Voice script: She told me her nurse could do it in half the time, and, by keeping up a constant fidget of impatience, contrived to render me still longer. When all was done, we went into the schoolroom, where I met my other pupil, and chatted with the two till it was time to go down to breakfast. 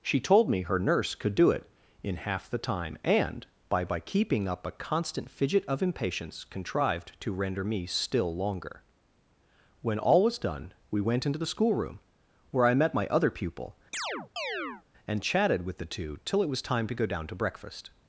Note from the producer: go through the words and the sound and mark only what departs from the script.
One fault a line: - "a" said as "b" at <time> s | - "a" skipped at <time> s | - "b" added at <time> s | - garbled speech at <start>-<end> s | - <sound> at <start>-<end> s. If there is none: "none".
- "by" added at 3.9 s
- chirp at 13.9-14.8 s